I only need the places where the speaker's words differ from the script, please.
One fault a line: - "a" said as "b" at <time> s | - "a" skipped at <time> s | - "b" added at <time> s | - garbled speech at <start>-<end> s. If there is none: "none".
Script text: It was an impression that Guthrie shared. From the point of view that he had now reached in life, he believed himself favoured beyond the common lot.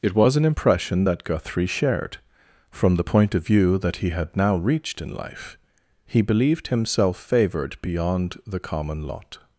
none